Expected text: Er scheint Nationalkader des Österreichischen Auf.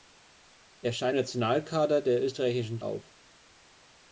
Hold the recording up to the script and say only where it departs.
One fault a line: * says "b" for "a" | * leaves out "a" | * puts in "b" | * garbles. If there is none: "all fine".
all fine